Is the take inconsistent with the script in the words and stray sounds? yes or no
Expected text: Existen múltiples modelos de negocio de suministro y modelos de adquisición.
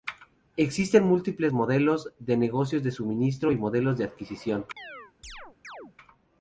yes